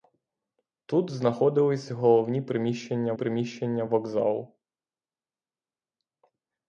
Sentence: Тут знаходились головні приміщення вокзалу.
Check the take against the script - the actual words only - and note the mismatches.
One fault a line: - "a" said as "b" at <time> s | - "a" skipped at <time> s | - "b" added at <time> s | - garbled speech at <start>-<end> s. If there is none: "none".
- "приміщення" added at 3.1 s